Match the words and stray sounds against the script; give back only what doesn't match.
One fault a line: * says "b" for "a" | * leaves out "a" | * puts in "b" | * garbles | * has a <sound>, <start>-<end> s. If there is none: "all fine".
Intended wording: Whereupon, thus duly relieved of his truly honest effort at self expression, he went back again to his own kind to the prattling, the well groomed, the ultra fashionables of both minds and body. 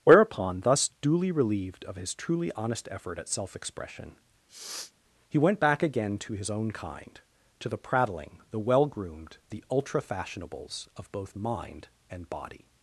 * has a sniff, 4.5-4.9 s
* says "mind" for "minds"